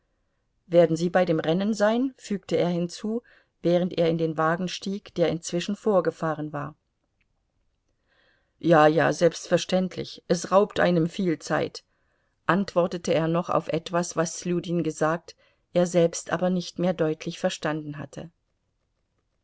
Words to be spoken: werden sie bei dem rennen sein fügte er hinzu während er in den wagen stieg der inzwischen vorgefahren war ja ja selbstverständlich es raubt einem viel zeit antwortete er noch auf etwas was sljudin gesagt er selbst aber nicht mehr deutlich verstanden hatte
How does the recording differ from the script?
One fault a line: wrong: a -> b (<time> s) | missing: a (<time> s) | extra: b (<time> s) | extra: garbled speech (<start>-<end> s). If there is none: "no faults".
no faults